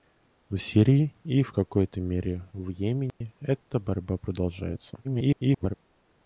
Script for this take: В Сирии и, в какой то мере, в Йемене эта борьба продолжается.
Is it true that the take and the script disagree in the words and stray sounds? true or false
true